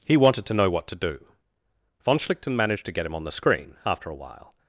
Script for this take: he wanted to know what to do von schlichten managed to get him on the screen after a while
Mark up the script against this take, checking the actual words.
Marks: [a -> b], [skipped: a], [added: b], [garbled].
he wanted to know what to do von schlichten managed to get him on the screen after a while